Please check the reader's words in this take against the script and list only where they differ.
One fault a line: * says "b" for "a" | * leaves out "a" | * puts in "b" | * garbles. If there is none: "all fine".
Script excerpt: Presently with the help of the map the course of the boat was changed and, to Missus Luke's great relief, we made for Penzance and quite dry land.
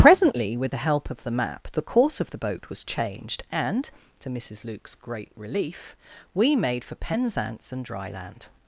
* leaves out "quite"